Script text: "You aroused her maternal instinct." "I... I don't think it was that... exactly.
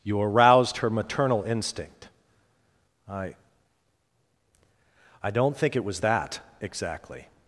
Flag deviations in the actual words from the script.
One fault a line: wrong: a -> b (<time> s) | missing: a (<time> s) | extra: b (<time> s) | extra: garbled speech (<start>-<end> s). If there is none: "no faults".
no faults